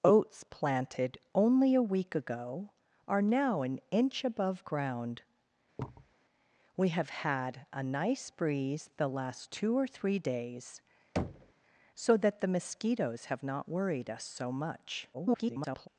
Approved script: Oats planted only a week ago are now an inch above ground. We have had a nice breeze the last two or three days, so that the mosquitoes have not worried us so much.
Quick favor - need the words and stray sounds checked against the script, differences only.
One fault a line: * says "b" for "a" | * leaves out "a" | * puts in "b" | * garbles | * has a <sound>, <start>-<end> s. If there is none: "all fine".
* has a thud, 5.8-6.1 s
* has a thud, 11.2-11.5 s
* garbles